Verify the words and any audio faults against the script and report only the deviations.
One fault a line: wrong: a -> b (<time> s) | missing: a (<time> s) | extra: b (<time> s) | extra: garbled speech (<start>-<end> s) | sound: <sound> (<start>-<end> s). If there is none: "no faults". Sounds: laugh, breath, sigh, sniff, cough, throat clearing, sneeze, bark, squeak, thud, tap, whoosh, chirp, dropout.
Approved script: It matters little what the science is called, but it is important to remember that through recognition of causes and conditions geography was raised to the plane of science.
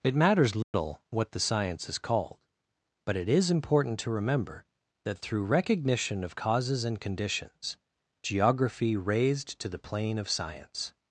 sound: dropout (0.6-0.7 s)
missing: was (9.0 s)